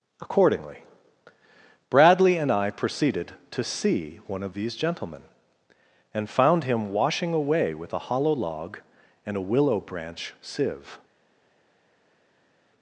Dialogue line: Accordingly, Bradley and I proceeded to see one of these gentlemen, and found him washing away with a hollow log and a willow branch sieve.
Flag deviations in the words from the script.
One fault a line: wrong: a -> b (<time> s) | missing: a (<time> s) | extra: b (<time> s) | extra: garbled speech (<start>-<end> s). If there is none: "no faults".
no faults